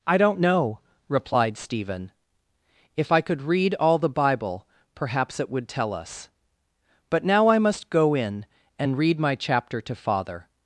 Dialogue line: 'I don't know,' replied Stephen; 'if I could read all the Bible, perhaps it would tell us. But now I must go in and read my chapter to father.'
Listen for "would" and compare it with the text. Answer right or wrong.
right